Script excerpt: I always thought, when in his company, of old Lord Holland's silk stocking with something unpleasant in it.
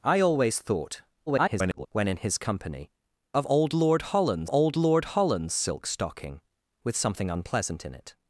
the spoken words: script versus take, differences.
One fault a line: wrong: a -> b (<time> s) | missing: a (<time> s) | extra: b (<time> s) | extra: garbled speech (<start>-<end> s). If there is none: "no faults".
extra: garbled speech (1.3-1.9 s)
extra: old Lord Holland's (4.5 s)